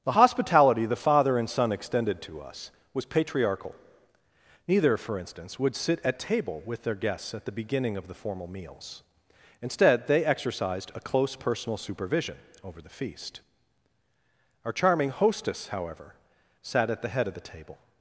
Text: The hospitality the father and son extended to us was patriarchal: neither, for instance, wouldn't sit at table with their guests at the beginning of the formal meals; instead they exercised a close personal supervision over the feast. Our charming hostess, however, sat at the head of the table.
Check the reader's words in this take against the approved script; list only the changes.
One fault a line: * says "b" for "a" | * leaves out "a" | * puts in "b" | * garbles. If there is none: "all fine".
* says "would" for "wouldn't"